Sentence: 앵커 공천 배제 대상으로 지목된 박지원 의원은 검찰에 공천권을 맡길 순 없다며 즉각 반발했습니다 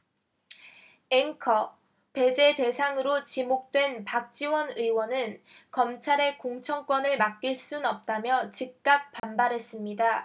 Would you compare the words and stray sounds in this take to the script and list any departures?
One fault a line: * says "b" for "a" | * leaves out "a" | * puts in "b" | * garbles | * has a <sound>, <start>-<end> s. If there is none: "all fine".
* leaves out "공천"
* has a dropout, 9.2-9.2 s